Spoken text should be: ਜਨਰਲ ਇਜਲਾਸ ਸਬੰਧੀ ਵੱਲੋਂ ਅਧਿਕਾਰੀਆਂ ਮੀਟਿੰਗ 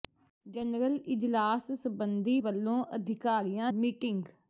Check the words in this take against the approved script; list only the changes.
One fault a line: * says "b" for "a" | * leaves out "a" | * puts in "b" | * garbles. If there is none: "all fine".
all fine